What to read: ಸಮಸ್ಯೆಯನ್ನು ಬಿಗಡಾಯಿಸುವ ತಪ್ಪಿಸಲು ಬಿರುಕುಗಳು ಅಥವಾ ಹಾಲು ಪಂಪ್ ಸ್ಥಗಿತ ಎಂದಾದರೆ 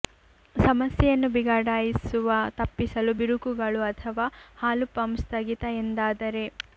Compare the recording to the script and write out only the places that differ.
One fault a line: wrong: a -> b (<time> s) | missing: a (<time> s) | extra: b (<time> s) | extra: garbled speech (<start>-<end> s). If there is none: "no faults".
no faults